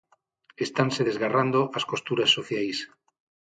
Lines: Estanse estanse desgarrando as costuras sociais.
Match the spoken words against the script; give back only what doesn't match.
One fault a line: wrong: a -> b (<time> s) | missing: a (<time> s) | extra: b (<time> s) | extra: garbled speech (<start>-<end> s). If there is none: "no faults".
missing: estanse (1.0 s)